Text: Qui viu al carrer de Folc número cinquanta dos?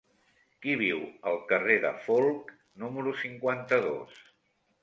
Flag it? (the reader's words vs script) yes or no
no